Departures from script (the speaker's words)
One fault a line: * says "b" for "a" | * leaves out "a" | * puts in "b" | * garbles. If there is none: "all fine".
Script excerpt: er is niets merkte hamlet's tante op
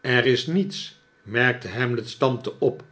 all fine